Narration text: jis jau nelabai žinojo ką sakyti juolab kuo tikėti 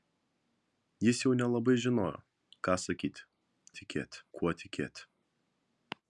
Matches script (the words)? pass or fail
fail